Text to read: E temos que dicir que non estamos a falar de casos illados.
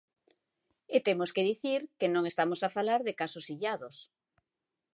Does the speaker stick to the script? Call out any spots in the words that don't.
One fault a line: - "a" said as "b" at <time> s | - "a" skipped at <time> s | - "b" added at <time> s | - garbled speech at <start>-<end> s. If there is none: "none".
none